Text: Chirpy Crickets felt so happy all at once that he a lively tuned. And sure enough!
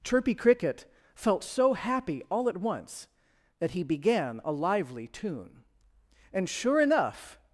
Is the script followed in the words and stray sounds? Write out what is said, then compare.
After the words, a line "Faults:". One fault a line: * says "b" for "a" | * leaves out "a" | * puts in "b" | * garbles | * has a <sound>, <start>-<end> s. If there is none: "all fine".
Chirpy Cricket felt so happy all at once that he began a lively tune. And sure enough!
Faults:
* says "Cricket" for "Crickets"
* puts in "began"
* says "tune" for "tuned"